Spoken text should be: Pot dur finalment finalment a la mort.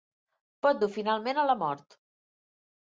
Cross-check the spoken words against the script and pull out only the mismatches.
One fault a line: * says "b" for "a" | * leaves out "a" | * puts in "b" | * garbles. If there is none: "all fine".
* leaves out "finalment"